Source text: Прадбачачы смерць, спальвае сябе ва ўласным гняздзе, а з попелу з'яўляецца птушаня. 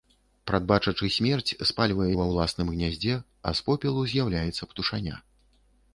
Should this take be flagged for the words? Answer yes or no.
yes